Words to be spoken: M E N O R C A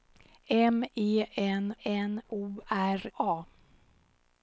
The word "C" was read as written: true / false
false